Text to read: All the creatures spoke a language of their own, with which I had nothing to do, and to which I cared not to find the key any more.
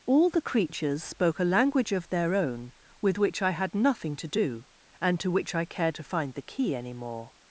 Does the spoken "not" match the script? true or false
false